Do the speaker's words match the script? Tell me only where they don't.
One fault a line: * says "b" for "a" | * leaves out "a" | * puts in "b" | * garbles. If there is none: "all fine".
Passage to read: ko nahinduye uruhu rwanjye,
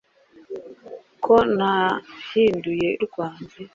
* leaves out "uruhu"